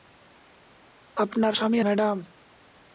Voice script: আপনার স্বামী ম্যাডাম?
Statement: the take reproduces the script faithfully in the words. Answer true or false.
true